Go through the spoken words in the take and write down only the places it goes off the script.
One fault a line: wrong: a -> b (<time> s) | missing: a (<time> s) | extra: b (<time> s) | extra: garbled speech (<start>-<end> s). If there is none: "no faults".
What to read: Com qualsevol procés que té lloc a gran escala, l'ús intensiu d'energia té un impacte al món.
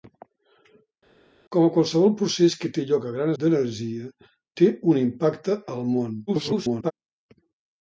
missing: escala l'ús intensiu (3.3 s)
extra: garbled speech (6.3-6.9 s)